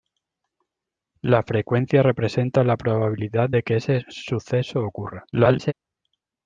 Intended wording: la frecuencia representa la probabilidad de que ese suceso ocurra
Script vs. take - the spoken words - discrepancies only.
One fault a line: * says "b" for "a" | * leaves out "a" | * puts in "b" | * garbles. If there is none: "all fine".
* garbles